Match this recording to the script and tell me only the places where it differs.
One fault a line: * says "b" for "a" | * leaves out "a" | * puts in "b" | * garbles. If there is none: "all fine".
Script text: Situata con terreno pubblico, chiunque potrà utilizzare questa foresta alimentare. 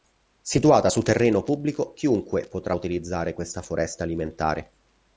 * says "su" for "con"